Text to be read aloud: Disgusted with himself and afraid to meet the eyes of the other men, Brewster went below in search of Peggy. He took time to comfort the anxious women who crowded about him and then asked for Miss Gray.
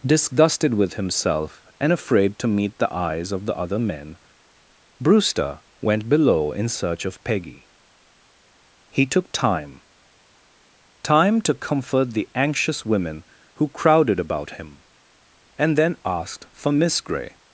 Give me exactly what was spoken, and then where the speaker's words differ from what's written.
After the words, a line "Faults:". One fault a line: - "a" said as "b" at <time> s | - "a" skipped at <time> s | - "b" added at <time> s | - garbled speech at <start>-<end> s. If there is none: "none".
Disgusted with himself and afraid to meet the eyes of the other men, Brewster went below in search of Peggy. He took time time to comfort the anxious women who crowded about him and then asked for Miss Gray.
Faults:
- "time" added at 11.0 s